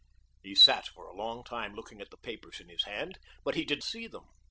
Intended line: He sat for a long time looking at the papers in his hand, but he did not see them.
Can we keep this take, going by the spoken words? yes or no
no